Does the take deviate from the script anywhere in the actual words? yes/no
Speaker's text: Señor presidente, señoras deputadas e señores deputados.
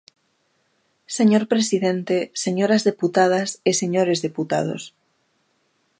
no